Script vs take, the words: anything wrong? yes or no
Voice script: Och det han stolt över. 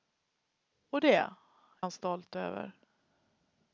no